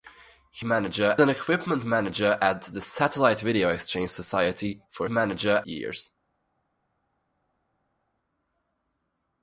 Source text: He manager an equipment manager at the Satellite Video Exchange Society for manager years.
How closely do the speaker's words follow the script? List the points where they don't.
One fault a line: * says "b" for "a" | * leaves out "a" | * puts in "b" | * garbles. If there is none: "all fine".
all fine